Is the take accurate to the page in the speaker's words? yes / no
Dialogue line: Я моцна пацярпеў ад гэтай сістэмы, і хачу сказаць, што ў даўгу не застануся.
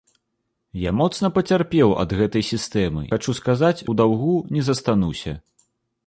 no